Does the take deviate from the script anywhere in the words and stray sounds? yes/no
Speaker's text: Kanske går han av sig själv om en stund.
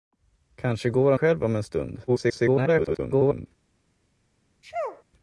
yes